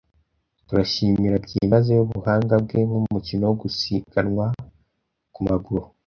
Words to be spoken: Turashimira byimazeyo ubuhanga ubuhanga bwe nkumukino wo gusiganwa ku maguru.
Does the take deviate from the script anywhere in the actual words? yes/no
yes